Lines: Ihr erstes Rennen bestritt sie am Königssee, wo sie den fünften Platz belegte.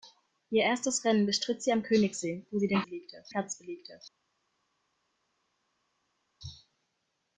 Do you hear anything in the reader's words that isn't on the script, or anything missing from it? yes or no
yes